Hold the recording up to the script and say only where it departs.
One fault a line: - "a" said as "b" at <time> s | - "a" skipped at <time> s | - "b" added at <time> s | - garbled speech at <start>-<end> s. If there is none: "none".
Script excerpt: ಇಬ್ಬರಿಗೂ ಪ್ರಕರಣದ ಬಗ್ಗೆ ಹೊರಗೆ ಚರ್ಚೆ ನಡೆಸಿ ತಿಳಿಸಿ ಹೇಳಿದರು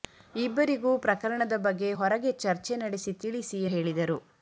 none